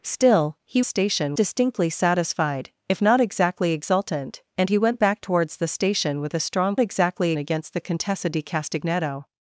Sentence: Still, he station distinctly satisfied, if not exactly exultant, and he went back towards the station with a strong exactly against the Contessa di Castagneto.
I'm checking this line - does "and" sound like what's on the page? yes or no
yes